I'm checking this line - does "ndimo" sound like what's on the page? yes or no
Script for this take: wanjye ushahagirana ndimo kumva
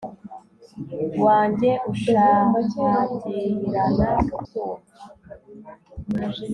no